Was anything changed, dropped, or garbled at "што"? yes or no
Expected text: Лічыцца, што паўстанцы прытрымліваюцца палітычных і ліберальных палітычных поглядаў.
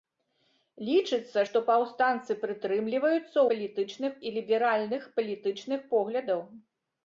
no